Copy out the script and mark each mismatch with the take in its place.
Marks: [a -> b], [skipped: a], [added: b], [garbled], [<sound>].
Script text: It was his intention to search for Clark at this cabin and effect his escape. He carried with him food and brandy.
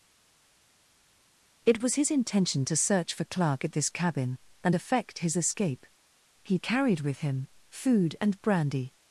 It was his intention to search for Clark at this cabin and effect his escape. He carried with him food and brandy.